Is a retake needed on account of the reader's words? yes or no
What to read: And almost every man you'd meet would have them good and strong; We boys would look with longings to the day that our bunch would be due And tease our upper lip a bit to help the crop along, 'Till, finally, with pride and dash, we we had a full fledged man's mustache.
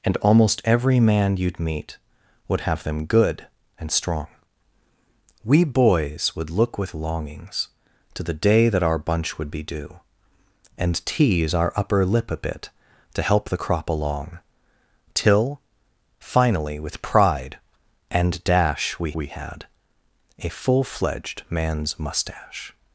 no